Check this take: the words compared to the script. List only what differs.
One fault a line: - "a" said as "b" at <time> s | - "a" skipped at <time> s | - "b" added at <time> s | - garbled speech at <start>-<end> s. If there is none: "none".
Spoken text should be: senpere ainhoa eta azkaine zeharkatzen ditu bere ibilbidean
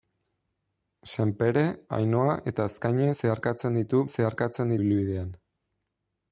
- "bere" said as "zeharkatzen" at 4.1 s